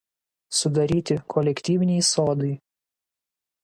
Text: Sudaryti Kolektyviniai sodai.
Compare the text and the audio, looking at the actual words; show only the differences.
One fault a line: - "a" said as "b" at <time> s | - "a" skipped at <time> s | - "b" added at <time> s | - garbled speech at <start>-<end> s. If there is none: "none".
none